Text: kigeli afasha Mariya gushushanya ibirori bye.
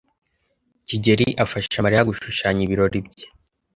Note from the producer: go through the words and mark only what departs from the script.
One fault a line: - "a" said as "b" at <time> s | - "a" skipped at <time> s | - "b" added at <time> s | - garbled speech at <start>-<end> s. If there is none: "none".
none